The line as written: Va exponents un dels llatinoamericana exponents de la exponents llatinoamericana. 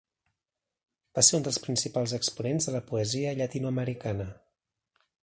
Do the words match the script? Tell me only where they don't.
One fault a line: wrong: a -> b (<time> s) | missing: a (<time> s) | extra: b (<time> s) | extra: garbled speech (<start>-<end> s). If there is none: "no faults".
wrong: exponents -> ser (1.3 s)
wrong: llatinoamericana -> principals (1.7 s)
wrong: exponents -> poesia (2.9 s)